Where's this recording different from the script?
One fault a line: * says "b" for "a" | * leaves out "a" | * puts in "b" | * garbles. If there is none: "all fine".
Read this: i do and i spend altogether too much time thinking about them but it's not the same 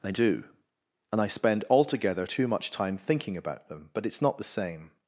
all fine